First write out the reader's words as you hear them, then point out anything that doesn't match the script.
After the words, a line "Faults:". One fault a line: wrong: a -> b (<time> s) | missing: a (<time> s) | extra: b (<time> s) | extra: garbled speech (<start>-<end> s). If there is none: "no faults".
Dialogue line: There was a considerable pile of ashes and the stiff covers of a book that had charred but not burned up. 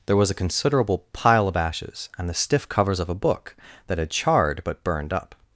There was a considerable pile of ashes and the stiff covers of a book that had charred but burned up.
Faults:
missing: not (4.8 s)